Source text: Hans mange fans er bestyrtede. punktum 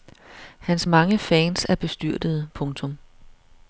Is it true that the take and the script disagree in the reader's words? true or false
false